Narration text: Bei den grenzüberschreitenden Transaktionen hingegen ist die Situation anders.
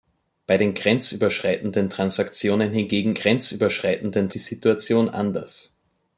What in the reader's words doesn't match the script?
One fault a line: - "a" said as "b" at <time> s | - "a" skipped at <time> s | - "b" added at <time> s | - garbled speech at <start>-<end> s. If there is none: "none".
- "ist" said as "grenzüberschreitenden" at 3.1 s